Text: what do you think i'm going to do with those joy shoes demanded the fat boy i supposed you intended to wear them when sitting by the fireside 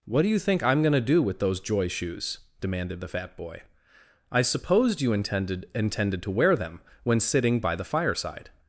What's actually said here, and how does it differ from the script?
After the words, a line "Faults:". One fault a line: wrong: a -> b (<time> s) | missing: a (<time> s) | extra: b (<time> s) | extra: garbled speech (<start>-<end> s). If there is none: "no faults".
what do you think i'm going to do with those joy shoes demanded the fat boy i supposed you intended intended to wear them when sitting by the fireside
Faults:
extra: intended (5.8 s)